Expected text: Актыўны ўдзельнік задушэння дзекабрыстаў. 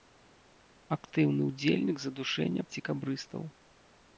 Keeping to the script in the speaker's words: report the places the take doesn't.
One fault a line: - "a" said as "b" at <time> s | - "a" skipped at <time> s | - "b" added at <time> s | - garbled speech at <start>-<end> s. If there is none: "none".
none